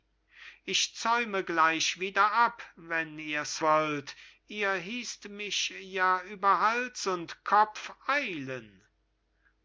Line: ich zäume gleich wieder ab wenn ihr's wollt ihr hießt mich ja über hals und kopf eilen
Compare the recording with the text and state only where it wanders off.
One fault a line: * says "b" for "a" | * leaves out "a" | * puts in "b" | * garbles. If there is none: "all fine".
all fine